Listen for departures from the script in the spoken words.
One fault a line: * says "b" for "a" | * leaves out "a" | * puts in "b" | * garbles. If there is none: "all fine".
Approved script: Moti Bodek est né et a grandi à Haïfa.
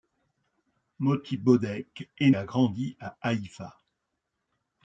* leaves out "né et"